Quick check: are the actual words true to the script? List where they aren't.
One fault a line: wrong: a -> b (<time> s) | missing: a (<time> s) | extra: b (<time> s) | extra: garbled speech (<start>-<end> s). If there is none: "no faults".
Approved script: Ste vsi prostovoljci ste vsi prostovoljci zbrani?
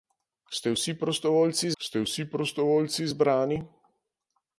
no faults